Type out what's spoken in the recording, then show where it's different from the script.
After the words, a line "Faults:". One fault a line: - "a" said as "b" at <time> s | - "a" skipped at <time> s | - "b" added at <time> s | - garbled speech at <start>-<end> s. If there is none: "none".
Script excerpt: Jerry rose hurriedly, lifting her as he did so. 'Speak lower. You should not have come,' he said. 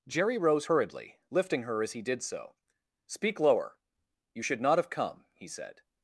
Jerry rose hurriedly, lifting her as he did so. 'Speak lower. You should not have come,' he said.
Faults:
none